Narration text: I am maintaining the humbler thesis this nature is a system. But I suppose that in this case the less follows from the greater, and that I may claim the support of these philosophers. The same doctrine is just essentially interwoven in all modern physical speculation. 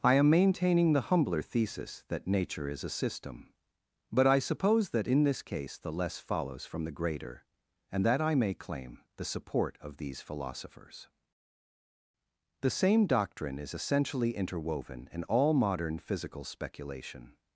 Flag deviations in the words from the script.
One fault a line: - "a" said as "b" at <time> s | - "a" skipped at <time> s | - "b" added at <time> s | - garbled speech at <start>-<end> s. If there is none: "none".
- "this" said as "that" at 2.1 s
- "just" skipped at 13.8 s